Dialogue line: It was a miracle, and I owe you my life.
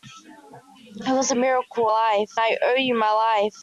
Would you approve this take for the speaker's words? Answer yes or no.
no